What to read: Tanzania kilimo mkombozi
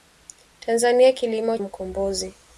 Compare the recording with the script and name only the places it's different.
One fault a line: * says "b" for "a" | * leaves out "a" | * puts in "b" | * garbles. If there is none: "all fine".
all fine